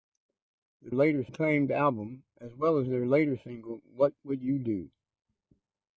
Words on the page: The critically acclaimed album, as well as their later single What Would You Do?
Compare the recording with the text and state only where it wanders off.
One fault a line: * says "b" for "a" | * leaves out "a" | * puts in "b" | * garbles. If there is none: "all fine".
* says "later" for "critically"